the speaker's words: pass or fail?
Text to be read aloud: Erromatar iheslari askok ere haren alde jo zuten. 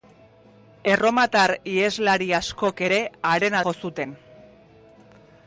fail